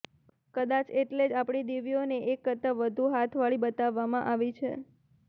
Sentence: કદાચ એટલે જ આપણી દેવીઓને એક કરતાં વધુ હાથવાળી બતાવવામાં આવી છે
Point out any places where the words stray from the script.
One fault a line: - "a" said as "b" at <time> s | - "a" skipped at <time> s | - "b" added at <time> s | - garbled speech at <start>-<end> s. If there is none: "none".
none